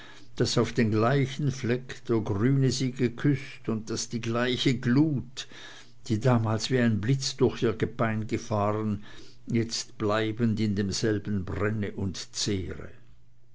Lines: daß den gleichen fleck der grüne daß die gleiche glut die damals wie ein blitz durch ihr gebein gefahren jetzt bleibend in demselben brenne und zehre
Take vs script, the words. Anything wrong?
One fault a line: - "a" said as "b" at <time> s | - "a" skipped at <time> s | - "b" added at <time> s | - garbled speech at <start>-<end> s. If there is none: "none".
- "auf" added at 0.6 s
- "sie geküßt und" added at 2.7 s